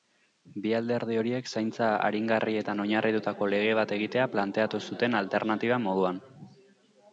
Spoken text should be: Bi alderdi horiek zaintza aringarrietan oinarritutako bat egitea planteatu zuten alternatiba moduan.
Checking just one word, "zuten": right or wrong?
right